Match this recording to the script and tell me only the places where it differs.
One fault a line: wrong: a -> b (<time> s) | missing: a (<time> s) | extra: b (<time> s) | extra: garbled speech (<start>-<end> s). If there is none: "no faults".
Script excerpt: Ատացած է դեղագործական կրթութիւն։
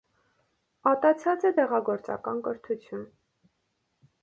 no faults